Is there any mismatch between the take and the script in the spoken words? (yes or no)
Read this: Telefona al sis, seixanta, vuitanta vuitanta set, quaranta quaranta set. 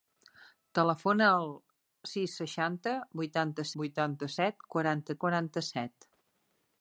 no